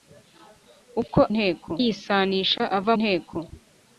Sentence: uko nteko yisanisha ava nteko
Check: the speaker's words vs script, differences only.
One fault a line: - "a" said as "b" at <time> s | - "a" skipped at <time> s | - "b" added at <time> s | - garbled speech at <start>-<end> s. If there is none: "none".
none